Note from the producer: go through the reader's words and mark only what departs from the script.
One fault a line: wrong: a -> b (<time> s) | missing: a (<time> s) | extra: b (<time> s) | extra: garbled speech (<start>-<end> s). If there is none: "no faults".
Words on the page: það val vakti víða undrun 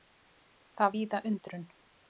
missing: val vakti (0.9 s)